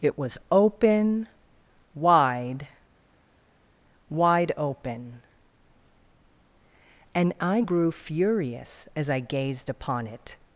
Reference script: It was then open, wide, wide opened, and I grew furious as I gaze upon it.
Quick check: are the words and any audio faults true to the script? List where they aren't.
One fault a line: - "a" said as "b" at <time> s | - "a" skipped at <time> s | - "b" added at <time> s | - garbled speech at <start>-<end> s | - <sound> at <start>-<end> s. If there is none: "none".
- "then" skipped at 0.4 s
- "opened" said as "open" at 4.6 s
- "gaze" said as "gazed" at 9.2 s